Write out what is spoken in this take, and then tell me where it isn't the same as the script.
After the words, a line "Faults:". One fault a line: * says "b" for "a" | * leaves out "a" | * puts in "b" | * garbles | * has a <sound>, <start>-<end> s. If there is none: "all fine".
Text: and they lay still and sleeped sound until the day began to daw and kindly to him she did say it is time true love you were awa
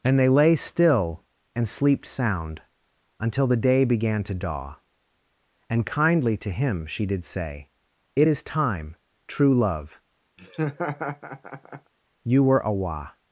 and they lay still and sleeped sound until the day began to daw and kindly to him she did say it is time true love you were awa
Faults:
* has a laugh, 10.4-11.9 s